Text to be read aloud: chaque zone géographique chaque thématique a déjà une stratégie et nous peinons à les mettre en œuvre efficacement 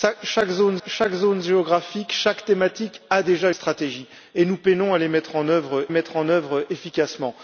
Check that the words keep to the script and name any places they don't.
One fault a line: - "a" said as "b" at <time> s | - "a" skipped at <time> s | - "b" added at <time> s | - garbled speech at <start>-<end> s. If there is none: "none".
- "chaque zone" added at 0.9 s
- "une" skipped at 3.5 s
- "mettre en œuvre" added at 5.9 s